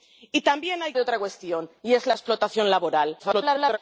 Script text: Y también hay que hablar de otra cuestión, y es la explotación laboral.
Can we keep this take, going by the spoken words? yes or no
no